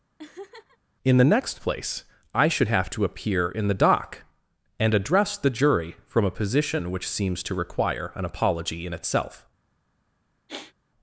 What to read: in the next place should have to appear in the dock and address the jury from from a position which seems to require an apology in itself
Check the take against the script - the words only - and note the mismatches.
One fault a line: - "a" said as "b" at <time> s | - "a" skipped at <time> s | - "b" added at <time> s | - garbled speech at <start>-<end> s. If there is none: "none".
- "i" added at 2.3 s
- "from" skipped at 6.3 s